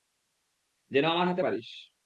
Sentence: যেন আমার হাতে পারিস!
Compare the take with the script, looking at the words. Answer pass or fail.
pass